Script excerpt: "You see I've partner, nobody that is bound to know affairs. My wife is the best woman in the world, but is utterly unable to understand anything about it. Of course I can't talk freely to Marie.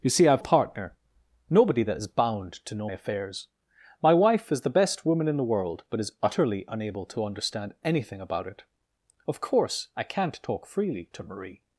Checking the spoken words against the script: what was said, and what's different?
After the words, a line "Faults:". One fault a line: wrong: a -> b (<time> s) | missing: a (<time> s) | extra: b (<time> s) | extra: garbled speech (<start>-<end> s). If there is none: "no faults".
"You see I've partner, nobody that is bound to know affairs. My wife is the best woman in the world, but is utterly unable to understand anything about it. Of course I can't talk freely to Marie.
Faults:
no faults